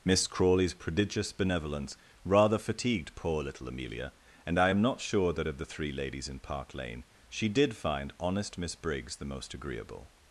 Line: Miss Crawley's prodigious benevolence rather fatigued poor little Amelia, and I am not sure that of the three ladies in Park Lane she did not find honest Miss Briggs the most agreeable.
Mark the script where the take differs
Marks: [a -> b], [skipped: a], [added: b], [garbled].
Miss Crawley's prodigious benevolence rather fatigued poor little Amelia, and I am not sure that of the three ladies in Park Lane she did [skipped: not] find honest Miss Briggs the most agreeable.